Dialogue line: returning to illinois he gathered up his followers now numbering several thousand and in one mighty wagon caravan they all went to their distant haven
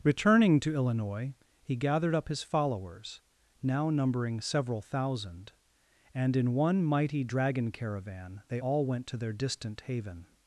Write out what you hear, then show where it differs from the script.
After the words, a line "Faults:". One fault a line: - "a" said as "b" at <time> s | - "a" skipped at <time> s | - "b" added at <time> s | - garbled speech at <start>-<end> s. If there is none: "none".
returning to illinois he gathered up his followers now numbering several thousand and in one mighty dragon caravan they all went to their distant haven
Faults:
- "wagon" said as "dragon" at 7.2 s